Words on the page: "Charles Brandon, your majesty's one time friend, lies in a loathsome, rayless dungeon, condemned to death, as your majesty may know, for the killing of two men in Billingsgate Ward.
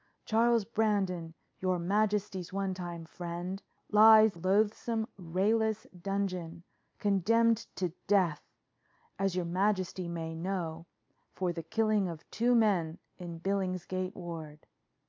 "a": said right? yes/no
no